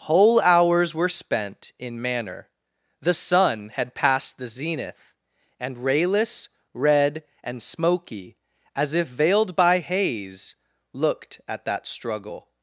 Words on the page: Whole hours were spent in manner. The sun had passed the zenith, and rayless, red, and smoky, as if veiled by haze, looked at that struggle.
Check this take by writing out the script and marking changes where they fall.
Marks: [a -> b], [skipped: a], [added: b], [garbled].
Whole hours were spent in manner. The sun had passed the zenith, and rayless, red, and smoky, as if veiled by haze, looked at that struggle.